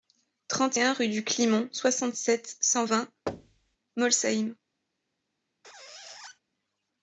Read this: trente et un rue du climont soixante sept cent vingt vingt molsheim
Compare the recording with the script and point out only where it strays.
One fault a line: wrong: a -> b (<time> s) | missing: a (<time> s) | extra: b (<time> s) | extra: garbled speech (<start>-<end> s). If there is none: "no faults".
missing: vingt (3.1 s)